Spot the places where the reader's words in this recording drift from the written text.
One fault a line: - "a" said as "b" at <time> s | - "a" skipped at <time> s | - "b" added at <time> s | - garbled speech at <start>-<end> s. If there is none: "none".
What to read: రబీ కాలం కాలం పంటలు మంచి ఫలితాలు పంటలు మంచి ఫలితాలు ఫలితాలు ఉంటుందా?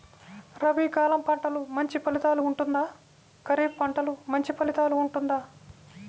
- "కాలం" skipped at 1.2 s
- "ఉంటుందా ఖరీఫ్" added at 2.4 s
- "ఫలితాలు" skipped at 4.9 s